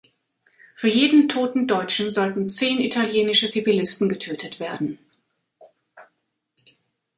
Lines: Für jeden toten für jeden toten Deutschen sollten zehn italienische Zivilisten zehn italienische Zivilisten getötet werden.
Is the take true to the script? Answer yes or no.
no